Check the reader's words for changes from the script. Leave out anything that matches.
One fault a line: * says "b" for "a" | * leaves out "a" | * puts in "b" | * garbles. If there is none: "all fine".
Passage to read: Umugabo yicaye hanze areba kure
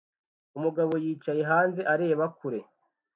all fine